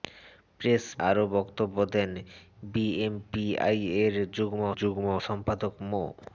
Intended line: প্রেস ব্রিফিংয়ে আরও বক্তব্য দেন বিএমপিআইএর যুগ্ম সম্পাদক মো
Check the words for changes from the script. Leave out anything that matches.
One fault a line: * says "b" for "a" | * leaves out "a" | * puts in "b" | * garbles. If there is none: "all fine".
* leaves out "ব্রিফিংয়ে"
* puts in "যুগ্ম"